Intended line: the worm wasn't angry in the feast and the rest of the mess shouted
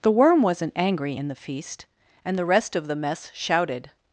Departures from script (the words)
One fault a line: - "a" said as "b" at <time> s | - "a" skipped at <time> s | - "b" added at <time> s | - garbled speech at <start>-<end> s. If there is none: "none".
none